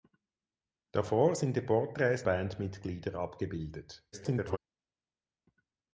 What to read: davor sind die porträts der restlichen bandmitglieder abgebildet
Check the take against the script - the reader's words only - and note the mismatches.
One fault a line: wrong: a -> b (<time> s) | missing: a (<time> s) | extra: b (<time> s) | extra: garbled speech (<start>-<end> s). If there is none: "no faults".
missing: der restlichen (2.2 s)
extra: garbled speech (4.1-4.6 s)